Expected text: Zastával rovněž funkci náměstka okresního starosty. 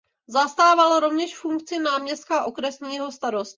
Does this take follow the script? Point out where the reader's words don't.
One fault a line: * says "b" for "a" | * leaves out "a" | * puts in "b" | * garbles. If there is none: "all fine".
all fine